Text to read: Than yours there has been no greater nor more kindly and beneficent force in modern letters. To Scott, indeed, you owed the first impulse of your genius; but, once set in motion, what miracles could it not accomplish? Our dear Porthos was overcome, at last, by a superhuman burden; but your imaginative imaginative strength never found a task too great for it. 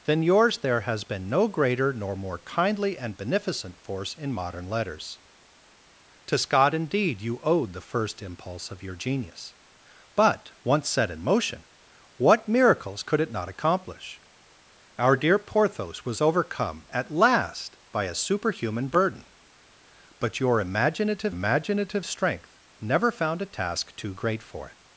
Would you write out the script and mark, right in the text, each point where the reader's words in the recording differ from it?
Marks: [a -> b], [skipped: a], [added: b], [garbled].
Than yours there has been no greater nor more kindly and beneficent force in modern letters. To Scott, indeed, you owed the first impulse of your genius; but, once set in motion, what miracles could it not accomplish? Our dear Porthos was overcome, at last, by a superhuman burden; but your imaginative imaginative strength never found a task too great for it.